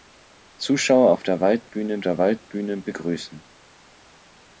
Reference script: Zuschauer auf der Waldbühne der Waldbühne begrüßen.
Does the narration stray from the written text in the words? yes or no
no